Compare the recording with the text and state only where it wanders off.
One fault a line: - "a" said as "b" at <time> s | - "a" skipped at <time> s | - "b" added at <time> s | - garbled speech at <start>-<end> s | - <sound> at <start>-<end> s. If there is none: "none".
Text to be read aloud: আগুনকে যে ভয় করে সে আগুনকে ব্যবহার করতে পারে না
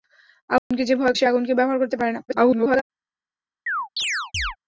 - dropout at 0.6-0.7 s
- "করে" skipped at 1.1 s
- garbled speech at 2.3-2.8 s
- chirp at 3.7-4.6 s